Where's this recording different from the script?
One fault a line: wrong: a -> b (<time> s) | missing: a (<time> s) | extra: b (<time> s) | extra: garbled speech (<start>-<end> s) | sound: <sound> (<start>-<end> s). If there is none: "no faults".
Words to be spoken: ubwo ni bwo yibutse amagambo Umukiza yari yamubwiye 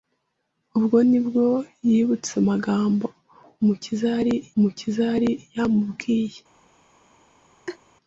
extra: Umukiza yari (4.6 s)
sound: laugh (7.7-7.8 s)